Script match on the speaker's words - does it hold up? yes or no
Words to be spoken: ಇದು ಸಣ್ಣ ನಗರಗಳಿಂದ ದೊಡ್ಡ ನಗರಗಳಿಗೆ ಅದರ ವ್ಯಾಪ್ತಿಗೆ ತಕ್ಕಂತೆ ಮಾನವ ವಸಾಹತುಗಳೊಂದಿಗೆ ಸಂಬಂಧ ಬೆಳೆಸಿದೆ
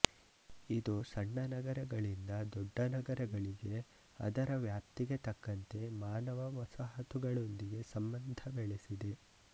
yes